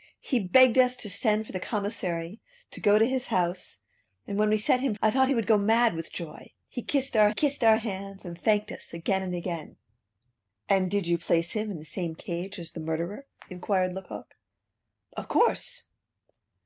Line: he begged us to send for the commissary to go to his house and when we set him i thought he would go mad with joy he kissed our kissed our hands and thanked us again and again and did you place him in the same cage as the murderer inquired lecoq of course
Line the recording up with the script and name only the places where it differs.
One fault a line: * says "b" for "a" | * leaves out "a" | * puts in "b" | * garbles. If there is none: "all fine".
all fine